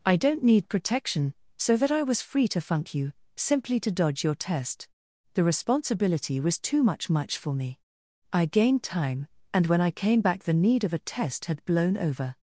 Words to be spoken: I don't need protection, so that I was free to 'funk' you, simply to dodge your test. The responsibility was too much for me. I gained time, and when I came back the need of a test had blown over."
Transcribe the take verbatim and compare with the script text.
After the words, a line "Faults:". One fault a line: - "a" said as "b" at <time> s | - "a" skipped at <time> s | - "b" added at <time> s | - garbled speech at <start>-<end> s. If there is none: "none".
I don't need protection, so that I was free to 'funk' you, simply to dodge your test. The responsibility was too much much for me. I gained time, and when I came back the need of a test had blown over."
Faults:
- "much" added at 7.1 s